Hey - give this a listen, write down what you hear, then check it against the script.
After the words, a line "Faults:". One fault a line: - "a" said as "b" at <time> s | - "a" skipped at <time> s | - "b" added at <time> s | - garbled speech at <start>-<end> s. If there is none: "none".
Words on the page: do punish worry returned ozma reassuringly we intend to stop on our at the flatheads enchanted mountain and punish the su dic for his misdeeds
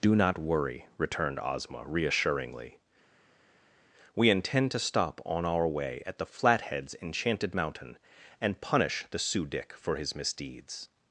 do not worry returned ozma reassuringly we intend to stop on our way at the flatheads enchanted mountain and punish the su dic for his misdeeds
Faults:
- "punish" said as "not" at 0.1 s
- "way" added at 5.7 s